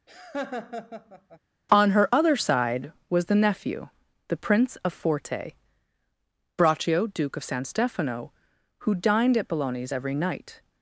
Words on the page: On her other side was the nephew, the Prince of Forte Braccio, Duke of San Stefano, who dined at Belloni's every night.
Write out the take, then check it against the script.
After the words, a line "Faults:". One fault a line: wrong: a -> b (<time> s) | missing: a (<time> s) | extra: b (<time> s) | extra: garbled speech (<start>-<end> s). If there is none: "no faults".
On her other side was the nephew, the Prince of Forte Braccio, Duke of San Stefano, who dined at Belloni's every night.
Faults:
no faults